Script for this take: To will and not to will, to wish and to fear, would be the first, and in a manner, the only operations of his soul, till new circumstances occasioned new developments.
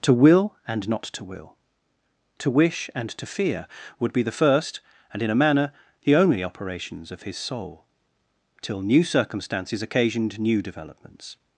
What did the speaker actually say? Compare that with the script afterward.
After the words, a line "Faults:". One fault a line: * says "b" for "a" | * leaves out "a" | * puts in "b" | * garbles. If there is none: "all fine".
To will and not to will, to wish and to fear, would be the first, and in a manner, the only operations of his soul, till new circumstances occasioned new developments.
Faults:
all fine